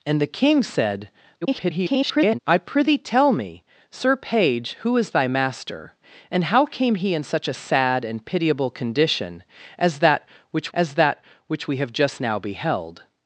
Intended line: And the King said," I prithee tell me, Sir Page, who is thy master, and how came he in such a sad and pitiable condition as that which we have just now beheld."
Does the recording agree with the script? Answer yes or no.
no